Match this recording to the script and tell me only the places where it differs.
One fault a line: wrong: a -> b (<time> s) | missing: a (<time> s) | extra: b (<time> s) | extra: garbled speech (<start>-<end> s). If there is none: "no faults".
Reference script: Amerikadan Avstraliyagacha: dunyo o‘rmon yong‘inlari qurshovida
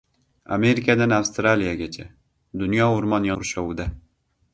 missing: yong‘inlari (3.3 s)